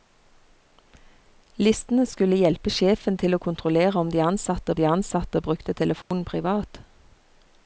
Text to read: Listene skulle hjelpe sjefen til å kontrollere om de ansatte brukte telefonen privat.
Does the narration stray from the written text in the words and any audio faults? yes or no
yes